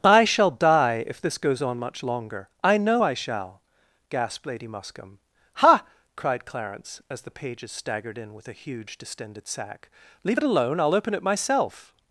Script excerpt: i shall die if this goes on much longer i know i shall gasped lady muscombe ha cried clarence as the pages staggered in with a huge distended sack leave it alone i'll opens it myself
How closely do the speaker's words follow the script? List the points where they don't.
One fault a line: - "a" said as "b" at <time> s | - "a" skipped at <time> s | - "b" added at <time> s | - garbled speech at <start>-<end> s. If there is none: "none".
- "opens" said as "open" at 10.9 s